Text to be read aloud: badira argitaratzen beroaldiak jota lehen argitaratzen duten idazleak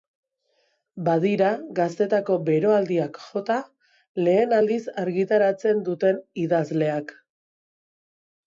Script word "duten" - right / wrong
right